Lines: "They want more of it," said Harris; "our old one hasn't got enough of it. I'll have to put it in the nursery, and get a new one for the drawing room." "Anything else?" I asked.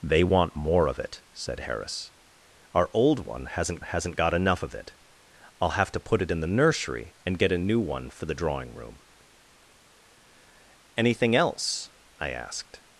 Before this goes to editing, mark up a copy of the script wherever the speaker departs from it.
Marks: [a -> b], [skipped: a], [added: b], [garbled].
"They want more of it," said Harris; "our old one hasn't [added: hasn't] got enough of it. I'll have to put it in the nursery, and get a new one for the drawing room." "Anything else?" I asked.